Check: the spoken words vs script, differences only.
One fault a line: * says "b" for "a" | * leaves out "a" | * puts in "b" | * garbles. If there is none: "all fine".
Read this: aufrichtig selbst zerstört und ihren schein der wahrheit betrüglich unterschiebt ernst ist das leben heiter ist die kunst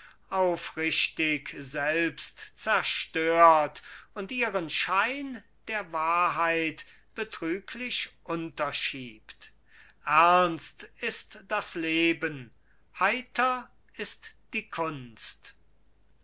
all fine